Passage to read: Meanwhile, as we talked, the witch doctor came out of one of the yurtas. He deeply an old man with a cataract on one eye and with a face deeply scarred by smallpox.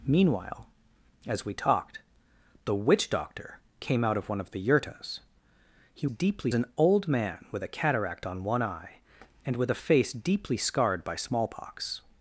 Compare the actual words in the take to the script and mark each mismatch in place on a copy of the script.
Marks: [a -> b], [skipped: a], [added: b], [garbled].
Meanwhile, as we talked, the witch doctor came out of one of the yurtas. He deeply an old man with a cataract on one eye and with a face deeply scarred by smallpox.